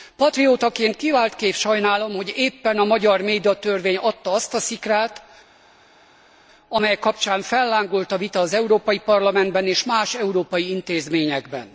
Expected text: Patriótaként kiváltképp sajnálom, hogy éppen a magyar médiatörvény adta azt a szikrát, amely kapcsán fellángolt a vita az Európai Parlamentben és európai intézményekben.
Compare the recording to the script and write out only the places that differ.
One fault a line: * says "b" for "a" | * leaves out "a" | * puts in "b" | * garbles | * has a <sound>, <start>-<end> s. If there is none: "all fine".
* puts in "más"